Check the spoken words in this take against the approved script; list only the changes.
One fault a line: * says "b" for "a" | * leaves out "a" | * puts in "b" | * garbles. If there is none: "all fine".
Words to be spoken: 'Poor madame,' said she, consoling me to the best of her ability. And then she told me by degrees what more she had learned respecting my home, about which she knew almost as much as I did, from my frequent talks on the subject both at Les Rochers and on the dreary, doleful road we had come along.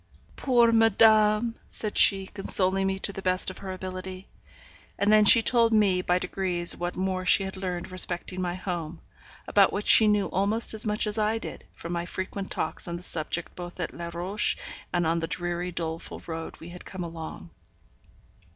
all fine